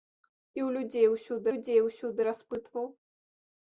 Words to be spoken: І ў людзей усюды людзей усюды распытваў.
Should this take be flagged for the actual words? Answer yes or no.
no